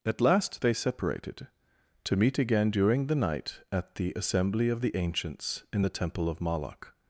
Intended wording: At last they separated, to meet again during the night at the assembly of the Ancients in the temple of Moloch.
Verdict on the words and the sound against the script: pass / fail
pass